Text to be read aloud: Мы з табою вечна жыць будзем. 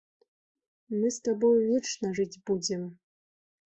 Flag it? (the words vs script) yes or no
no